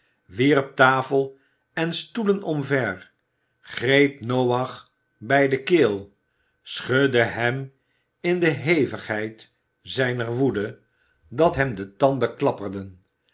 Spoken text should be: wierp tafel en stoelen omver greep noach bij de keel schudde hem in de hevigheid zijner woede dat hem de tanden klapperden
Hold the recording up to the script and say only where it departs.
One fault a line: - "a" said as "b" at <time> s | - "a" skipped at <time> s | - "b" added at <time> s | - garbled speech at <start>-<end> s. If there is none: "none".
none